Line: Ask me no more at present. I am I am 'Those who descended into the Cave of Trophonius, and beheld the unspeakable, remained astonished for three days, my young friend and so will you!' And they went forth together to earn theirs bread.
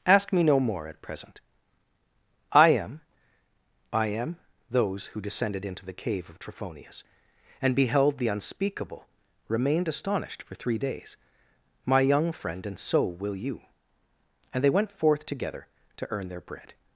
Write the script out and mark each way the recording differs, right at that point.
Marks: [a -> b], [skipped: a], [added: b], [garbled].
Ask me no more at present. I am I am 'Those who descended into the Cave of Trophonius, and beheld the unspeakable, remained astonished for three days, my young friend and so will you!' And they went forth together to earn [theirs -> their] bread.